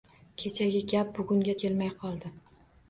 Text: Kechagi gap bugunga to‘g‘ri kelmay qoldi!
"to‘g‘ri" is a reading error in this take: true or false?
true